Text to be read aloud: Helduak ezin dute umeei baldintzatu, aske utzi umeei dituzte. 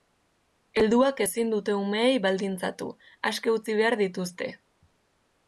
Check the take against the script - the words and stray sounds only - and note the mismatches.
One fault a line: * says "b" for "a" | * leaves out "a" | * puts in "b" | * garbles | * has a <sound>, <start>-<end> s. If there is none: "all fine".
* says "behar" for "umeei"